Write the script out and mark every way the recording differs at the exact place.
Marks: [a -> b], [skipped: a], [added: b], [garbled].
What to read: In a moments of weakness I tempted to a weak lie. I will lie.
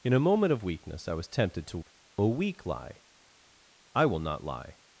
In a [moments -> moment] of weakness I [added: was] tempted to a weak lie. I will [added: not] lie.